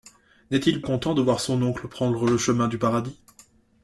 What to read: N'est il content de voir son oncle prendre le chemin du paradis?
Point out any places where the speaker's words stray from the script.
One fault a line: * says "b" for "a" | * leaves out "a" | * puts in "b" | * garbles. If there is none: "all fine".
all fine